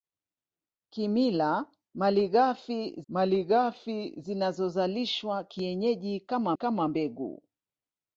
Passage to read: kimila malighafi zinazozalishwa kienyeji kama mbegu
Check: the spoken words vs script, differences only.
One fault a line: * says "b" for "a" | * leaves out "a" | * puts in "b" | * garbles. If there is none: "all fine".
* puts in "malighafi"
* puts in "kama"